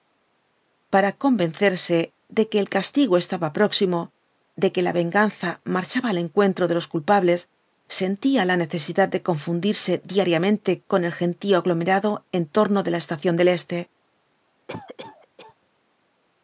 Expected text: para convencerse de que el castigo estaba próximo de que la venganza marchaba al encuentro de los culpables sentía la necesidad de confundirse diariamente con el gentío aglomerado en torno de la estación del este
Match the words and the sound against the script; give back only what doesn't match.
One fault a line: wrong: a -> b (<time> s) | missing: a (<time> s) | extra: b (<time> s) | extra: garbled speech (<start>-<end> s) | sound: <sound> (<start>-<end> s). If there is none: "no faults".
sound: cough (14.7-15.6 s)